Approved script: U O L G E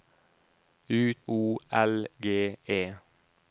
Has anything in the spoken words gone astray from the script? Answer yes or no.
no